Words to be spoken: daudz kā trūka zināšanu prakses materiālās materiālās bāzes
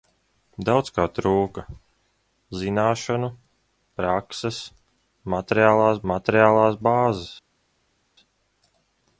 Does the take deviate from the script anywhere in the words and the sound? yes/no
no